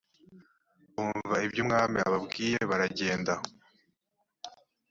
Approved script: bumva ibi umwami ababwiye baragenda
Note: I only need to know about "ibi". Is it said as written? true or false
false